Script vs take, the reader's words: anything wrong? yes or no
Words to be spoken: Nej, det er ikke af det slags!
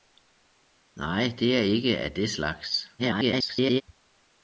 yes